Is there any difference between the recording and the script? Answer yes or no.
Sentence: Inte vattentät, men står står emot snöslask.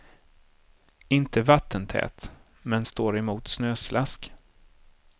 yes